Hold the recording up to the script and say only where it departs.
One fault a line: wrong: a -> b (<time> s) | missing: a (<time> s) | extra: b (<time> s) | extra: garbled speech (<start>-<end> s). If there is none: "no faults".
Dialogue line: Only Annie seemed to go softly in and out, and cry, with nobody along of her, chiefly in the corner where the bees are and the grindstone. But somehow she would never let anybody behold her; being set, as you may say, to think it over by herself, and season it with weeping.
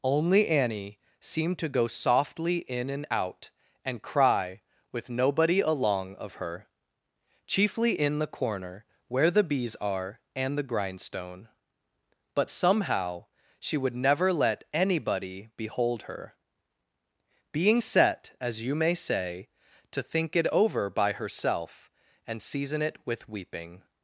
no faults